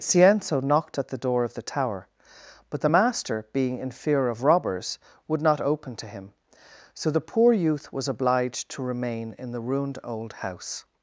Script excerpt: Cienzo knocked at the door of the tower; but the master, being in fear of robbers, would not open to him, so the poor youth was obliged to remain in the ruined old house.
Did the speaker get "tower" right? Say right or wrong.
right